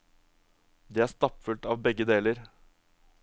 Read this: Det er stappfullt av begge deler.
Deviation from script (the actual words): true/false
false